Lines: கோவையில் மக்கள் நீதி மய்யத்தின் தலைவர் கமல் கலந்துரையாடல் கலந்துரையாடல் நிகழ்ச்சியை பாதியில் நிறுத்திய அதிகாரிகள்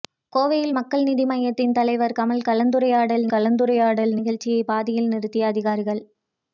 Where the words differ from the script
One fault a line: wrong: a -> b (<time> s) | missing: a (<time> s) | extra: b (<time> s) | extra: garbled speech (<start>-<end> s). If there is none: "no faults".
no faults